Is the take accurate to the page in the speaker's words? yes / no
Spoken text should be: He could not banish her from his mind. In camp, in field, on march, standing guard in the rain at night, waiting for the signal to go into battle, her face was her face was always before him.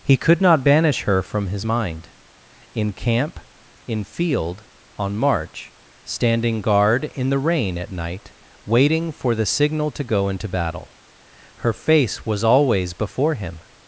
no